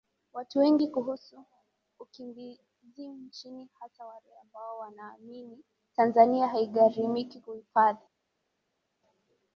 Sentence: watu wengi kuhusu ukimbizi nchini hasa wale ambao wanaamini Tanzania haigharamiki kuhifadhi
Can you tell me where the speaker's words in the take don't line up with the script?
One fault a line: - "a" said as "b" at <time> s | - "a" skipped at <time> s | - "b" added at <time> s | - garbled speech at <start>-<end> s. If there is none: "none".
none